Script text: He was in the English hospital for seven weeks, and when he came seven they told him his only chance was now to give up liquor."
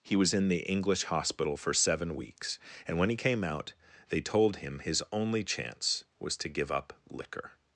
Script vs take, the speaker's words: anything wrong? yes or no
yes